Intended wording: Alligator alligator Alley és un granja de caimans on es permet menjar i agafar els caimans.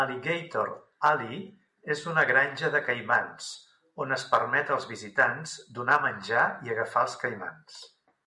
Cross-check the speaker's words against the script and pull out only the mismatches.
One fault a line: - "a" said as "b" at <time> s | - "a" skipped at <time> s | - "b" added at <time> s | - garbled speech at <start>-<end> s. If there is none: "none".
- "alligator" skipped at 0.7 s
- "un" said as "una" at 2.1 s
- "als visitants donar" added at 4.7 s